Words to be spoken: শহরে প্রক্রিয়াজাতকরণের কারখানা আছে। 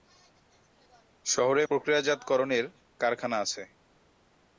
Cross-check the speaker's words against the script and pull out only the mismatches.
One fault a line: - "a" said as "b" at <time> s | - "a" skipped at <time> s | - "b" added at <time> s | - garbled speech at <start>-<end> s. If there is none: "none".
none